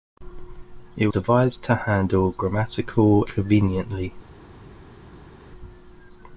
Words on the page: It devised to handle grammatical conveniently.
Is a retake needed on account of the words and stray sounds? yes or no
no